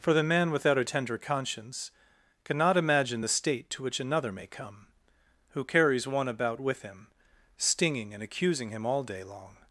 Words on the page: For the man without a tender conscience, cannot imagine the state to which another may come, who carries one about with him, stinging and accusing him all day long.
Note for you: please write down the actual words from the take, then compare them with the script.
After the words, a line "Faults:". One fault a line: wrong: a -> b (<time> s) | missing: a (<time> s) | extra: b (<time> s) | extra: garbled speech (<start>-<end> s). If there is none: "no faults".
For the man without a tender conscience, cannot imagine the state to which another may come, who carries one about with him, stinging and accusing him all day long.
Faults:
no faults